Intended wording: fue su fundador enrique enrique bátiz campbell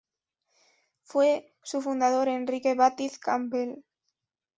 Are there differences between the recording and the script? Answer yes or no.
yes